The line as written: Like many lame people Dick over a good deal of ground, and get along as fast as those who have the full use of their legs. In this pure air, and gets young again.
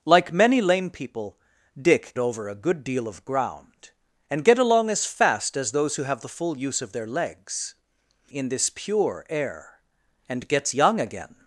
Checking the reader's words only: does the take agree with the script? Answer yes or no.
yes